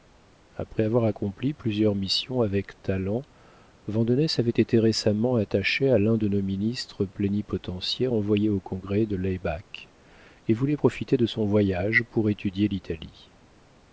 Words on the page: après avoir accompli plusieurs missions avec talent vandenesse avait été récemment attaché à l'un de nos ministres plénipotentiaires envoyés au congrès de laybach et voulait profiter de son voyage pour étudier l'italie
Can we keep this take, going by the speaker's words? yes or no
yes